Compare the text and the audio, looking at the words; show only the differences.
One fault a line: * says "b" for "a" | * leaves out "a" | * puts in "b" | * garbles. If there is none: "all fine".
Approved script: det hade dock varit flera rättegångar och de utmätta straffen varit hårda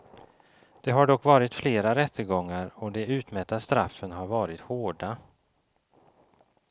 * says "har" for "hade"
* puts in "har"